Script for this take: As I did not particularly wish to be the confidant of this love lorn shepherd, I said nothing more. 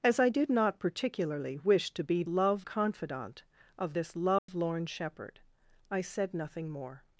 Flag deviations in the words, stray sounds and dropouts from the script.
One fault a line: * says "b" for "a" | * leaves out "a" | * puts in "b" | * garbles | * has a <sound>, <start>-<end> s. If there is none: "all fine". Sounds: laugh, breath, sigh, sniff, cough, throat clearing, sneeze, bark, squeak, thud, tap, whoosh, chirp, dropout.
* says "love" for "the"
* has a dropout, 4.4-4.5 s